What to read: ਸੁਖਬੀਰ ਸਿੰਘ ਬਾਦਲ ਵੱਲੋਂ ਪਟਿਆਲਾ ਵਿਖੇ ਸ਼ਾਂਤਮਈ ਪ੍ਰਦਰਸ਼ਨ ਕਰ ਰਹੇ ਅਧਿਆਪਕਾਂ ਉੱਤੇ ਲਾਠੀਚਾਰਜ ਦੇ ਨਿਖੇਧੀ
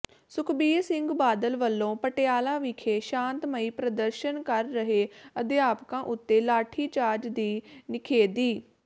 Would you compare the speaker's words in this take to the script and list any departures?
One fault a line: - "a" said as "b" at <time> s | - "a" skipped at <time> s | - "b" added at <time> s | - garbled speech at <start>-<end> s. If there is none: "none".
- "ਦੇ" said as "ਦੀ" at 7.3 s